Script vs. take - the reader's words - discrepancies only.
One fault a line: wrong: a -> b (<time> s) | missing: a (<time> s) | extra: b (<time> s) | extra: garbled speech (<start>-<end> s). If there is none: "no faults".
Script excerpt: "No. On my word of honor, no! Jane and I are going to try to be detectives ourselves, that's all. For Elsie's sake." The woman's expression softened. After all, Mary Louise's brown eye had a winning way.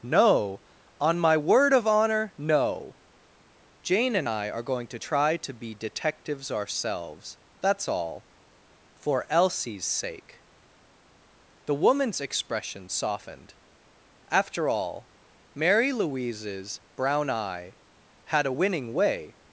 no faults